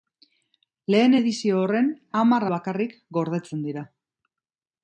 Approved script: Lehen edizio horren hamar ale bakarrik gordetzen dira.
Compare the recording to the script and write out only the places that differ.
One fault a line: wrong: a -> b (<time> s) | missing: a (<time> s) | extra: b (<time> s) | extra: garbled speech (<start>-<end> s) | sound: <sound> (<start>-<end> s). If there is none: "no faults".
missing: ale (2.5 s)